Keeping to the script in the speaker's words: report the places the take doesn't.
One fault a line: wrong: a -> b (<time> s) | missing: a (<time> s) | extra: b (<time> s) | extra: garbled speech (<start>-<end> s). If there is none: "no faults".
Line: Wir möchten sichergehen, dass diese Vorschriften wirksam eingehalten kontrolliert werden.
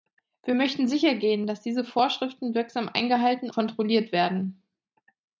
no faults